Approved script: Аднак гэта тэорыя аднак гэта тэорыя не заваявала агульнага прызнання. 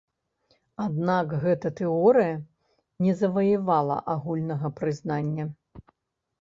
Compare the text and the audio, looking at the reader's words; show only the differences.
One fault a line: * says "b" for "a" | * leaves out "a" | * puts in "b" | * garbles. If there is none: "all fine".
* leaves out "аднак гэта тэорыя"